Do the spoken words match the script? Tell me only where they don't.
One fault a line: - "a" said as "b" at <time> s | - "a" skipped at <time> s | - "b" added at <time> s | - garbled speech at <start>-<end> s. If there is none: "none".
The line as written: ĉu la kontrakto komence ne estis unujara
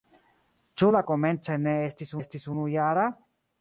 - "kontrakto" skipped at 1.0 s
- "estis" added at 2.2 s